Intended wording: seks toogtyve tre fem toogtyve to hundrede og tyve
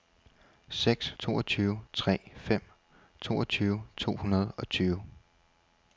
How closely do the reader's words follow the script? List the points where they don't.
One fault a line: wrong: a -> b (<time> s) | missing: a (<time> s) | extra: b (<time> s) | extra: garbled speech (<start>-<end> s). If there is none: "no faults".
no faults